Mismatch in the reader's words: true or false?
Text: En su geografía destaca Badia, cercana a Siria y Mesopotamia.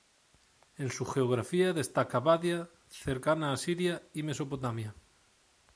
false